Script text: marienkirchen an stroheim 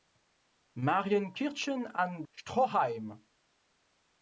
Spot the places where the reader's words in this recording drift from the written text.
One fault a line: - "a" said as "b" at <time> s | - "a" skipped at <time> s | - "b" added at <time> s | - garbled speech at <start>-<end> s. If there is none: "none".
none